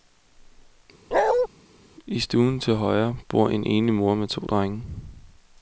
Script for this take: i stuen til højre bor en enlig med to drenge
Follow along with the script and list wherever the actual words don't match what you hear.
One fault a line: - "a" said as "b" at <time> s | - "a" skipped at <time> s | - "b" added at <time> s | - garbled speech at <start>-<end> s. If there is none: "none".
- "mor" added at 3.9 s